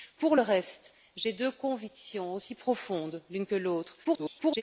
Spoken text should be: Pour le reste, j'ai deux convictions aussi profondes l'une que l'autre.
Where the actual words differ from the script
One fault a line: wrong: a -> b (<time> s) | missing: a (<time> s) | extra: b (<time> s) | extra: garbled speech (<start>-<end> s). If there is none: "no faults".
extra: garbled speech (4.0-4.6 s)